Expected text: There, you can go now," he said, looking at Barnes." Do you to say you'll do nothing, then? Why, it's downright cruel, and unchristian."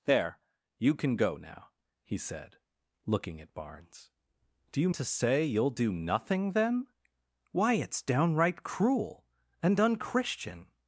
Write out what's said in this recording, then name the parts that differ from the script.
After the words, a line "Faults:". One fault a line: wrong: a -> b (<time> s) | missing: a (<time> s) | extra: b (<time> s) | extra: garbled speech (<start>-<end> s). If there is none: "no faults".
There, you can go now," he said, looking at Barnes." Do you to say you'll do nothing, then? Why, it's downright cruel, and unchristian."
Faults:
no faults